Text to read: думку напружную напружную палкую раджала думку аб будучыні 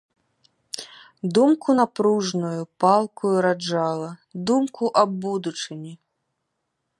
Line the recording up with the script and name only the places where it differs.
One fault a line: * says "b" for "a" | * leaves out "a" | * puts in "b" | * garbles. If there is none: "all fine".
* leaves out "напружную"